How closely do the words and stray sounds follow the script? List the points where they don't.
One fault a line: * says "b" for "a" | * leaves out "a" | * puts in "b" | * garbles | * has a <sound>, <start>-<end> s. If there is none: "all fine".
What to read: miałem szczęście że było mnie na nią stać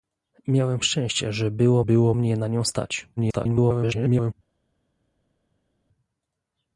* puts in "było"
* garbles